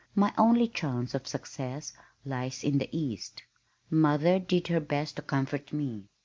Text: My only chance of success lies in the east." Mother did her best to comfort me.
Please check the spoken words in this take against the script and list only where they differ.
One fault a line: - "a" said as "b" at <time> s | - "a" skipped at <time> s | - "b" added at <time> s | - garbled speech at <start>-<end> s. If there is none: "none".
none